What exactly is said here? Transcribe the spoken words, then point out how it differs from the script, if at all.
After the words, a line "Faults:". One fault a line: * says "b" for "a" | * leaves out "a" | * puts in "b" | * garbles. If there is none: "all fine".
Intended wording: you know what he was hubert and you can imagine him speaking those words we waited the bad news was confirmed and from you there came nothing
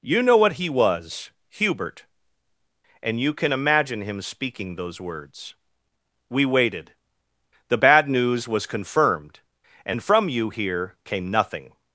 you know what he was hubert and you can imagine him speaking those words we waited the bad news was confirmed and from you here came nothing
Faults:
* says "here" for "there"